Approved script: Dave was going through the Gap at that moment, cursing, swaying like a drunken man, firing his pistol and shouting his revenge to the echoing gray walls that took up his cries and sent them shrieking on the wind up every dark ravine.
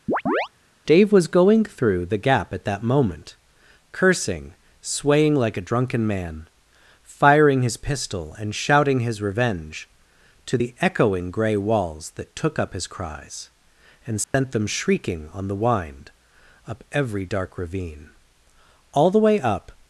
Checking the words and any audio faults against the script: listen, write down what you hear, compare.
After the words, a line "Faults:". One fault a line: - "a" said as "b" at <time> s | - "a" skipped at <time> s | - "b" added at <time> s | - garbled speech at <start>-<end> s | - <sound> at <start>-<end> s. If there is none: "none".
Dave was going through the Gap at that moment, cursing, swaying like a drunken man, firing his pistol and shouting his revenge to the echoing gray walls that took up his cries and sent them shrieking on the wind up every dark ravine. All the way up
Faults:
- chirp at 0.1-0.5 s
- dropout at 14.2-14.3 s
- "All the way up" added at 18.9 s